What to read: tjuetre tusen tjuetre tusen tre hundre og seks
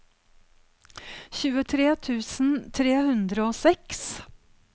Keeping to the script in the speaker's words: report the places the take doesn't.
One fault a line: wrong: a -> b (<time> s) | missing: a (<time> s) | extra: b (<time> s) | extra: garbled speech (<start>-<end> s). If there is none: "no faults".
missing: tjuetre tusen (2.5 s)